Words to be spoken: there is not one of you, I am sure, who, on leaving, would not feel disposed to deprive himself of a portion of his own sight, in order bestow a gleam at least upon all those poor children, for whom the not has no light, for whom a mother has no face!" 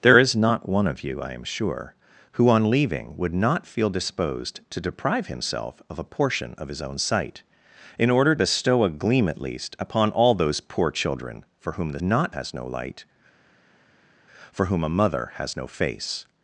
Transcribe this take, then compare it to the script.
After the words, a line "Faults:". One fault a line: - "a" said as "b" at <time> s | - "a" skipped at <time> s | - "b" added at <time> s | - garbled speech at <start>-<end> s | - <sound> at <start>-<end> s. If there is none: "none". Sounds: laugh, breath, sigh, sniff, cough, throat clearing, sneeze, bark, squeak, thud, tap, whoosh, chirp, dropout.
there is not one of you, I am sure, who, on leaving, would not feel disposed to deprive himself of a portion of his own sight, in order bestow a gleam at least upon all those poor children, for whom the not has no light, for whom a mother has no face!"
Faults:
none